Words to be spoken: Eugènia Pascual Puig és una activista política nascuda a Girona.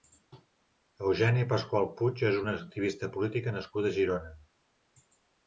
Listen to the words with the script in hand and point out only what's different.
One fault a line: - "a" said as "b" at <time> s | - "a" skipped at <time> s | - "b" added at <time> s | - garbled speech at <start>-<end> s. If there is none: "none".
none